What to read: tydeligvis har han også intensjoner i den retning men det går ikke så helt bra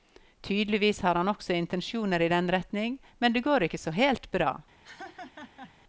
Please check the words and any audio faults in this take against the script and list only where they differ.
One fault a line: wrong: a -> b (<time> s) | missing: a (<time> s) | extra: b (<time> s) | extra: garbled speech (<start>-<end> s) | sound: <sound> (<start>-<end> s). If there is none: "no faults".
sound: laugh (4.8-5.7 s)